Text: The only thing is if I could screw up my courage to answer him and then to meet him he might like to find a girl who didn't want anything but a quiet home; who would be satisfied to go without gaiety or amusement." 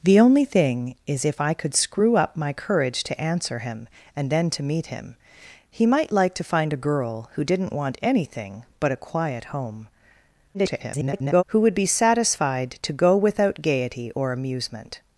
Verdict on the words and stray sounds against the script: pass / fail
fail